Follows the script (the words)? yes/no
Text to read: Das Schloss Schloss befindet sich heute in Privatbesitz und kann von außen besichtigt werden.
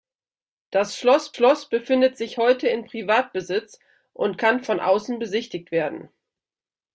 yes